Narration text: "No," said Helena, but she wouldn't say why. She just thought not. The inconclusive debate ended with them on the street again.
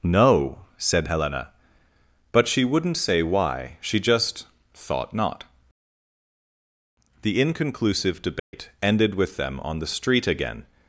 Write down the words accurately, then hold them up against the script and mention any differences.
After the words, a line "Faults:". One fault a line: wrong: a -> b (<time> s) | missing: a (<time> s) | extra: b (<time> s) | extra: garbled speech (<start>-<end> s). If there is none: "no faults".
"No," said Helena, but she wouldn't say why. She just thought not. The inconclusive debate ended with them on the street again.
Faults:
no faults